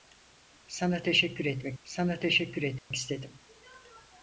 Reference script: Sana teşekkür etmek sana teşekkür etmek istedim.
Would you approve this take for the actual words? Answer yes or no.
yes